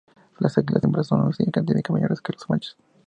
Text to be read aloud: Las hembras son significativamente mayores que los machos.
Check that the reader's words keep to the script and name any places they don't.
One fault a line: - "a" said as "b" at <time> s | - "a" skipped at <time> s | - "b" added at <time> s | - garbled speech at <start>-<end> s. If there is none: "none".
- "águilas" added at 0.6 s